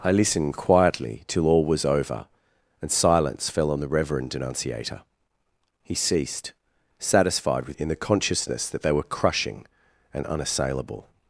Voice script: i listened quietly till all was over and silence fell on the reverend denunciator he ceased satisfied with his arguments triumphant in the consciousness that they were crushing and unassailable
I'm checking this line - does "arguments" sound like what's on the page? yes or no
no